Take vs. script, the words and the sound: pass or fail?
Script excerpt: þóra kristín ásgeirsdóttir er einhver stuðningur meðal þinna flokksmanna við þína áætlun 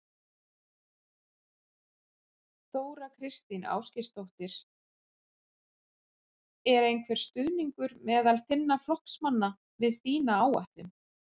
pass